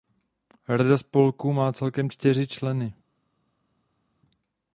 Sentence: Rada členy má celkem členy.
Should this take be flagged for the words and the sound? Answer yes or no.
yes